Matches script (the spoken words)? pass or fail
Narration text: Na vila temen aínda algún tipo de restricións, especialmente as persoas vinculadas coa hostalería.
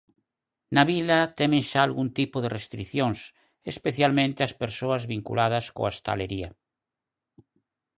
fail